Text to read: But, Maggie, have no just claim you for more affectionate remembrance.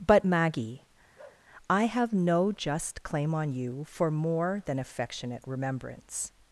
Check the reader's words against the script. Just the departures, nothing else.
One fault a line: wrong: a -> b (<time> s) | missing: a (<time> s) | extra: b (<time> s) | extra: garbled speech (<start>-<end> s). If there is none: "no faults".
extra: I (1.7 s)
extra: on (3.3 s)
extra: than (4.7 s)